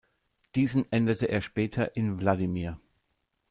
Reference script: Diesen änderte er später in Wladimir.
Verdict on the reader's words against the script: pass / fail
pass